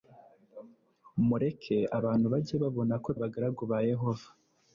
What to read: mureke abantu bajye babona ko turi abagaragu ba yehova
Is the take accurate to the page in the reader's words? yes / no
no